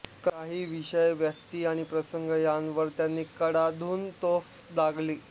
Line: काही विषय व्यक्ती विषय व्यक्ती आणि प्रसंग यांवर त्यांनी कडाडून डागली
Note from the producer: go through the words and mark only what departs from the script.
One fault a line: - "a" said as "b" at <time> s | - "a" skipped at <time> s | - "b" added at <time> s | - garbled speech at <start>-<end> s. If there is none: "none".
- "विषय व्यक्ती" skipped at 1.6 s
- "तोफ" added at 4.2 s